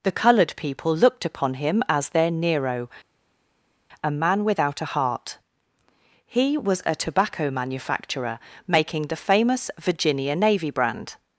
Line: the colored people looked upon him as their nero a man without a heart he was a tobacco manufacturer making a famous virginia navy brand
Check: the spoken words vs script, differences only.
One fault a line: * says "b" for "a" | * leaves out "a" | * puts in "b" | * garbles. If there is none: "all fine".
* says "the" for "a"